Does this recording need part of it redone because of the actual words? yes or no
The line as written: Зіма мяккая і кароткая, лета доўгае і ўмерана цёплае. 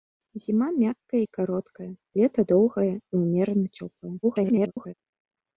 yes